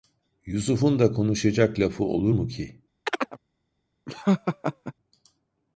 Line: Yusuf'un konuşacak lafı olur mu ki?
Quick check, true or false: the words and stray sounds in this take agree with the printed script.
false